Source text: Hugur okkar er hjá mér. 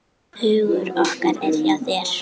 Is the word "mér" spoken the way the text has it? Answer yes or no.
no